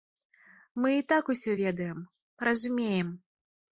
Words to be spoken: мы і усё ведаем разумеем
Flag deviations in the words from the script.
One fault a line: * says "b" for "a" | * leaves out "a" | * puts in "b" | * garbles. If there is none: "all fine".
* puts in "так"